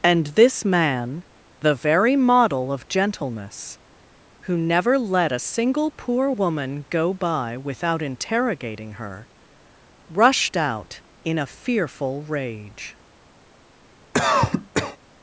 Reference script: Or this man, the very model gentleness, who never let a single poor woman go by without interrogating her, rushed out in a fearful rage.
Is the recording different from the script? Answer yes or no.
yes